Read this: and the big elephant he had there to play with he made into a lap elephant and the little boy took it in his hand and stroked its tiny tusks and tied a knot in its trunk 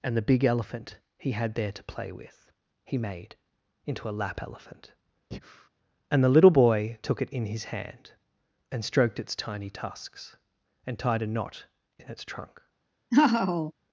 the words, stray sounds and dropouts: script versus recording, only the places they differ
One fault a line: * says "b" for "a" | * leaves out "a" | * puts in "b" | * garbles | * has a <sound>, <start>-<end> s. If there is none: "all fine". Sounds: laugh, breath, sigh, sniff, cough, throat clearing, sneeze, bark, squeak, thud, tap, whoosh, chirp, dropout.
* has a breath, 5.3-5.7 s
* has a laugh, 13.1-13.7 s